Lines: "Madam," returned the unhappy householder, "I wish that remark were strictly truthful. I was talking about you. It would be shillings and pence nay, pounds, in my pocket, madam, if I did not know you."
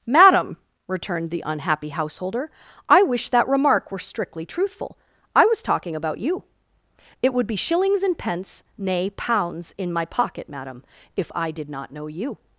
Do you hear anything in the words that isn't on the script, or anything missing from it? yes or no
no